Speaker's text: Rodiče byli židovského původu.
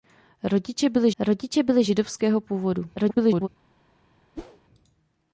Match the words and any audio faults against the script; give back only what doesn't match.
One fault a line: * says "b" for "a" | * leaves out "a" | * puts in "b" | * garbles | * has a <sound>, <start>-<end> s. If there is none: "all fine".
* puts in "rodiče byli"
* garbles
* has a whoosh, 4.4-4.6 s